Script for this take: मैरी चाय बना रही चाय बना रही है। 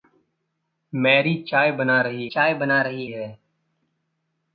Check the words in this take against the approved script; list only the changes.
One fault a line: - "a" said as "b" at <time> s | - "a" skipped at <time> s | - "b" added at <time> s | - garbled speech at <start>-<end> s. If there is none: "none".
none